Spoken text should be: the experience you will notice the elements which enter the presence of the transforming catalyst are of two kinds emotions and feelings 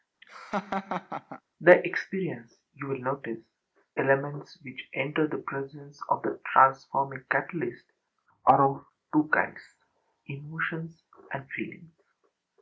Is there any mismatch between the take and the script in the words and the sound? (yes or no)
yes